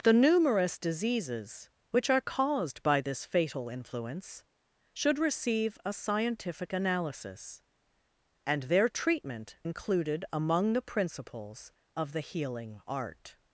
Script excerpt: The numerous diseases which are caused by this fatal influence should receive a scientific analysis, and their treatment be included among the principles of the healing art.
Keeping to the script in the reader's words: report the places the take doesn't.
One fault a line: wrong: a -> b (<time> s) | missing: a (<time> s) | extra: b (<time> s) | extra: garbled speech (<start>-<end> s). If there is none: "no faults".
missing: be (9.6 s)